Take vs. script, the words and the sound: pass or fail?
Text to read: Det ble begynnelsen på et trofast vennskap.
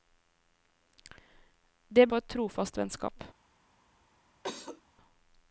fail